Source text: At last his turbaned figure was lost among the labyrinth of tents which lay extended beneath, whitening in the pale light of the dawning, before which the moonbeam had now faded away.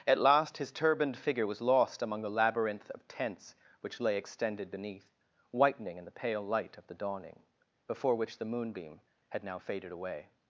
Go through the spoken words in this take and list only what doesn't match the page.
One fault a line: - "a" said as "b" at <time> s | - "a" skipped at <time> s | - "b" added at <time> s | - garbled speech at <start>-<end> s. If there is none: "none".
none